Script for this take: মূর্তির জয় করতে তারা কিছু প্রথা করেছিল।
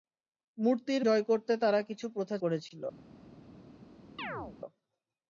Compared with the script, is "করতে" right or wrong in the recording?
right